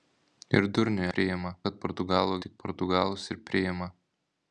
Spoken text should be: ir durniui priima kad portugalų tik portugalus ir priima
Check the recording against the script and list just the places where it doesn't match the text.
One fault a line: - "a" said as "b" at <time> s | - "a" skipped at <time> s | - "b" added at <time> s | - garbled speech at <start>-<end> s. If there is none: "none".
none